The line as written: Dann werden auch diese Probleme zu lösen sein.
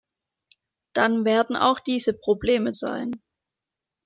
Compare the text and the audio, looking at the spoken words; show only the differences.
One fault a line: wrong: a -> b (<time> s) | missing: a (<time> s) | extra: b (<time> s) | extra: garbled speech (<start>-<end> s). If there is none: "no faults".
missing: zu lösen (2.7 s)